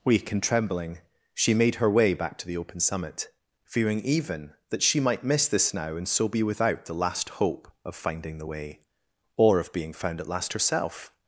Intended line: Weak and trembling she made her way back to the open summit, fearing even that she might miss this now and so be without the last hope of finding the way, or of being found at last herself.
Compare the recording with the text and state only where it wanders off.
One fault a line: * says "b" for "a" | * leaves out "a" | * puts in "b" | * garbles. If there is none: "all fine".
all fine